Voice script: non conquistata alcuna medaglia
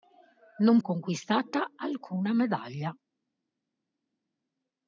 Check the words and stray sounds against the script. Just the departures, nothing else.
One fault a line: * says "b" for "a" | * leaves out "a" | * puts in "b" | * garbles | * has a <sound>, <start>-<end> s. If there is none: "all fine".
all fine